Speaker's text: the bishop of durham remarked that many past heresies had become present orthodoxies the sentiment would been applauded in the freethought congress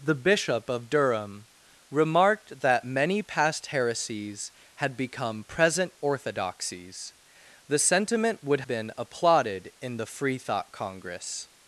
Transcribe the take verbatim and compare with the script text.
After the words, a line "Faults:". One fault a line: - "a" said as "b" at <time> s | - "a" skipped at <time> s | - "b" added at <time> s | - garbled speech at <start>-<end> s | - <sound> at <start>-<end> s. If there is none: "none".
the bishop of durham remarked that many past heresies had become present orthodoxies the sentiment would been applauded in the freethought congress
Faults:
none